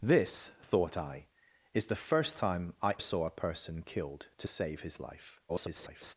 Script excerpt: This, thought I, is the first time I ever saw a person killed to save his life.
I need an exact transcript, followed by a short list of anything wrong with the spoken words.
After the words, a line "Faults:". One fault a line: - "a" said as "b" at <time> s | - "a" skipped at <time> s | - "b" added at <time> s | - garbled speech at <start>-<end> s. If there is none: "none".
This, thought I, is the first time I saw a person killed to save his life. [garbled]
Faults:
- "ever" skipped at 3.0 s
- garbled speech at 5.5-6.1 s